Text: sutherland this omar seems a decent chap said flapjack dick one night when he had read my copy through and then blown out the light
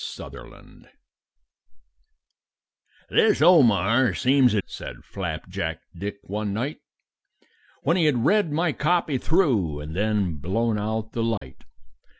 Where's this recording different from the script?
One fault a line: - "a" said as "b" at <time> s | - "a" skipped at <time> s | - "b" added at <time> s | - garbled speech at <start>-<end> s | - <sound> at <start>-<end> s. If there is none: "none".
- "decent chap" skipped at 4.6 s
- dropout at 11.4-11.4 s